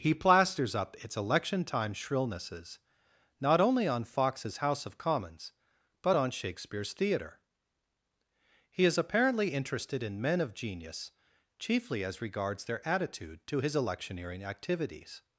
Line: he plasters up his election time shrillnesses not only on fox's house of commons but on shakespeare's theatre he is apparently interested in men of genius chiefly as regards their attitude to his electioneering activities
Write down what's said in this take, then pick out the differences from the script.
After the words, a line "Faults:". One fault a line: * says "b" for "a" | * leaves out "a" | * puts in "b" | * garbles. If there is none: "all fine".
he plasters up its election time shrillnesses not only on fox's house of commons but on shakespeare's theatre he is apparently interested in men of genius chiefly as regards their attitude to his electioneering activities
Faults:
* says "its" for "his"